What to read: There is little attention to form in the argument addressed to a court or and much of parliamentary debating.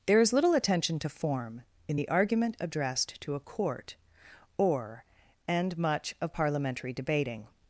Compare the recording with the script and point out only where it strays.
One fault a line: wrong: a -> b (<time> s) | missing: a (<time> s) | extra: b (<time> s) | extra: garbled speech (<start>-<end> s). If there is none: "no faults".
no faults